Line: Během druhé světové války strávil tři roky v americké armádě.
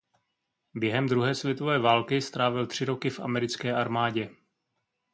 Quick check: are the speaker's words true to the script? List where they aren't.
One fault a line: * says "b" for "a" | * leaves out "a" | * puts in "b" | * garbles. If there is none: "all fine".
all fine